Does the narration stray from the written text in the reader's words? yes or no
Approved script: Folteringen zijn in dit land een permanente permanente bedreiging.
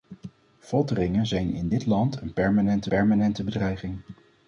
no